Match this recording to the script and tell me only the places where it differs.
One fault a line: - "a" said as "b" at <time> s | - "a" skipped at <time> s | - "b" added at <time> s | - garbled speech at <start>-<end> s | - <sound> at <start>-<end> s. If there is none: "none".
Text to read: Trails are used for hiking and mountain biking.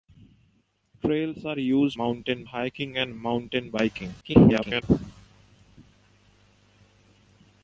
- "for" said as "mountain" at 1.9 s
- garbled speech at 4.2-4.8 s